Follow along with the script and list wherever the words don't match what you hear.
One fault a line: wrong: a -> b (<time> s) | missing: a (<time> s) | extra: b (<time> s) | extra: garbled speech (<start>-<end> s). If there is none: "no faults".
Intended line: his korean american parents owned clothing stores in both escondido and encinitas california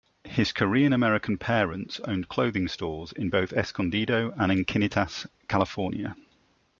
no faults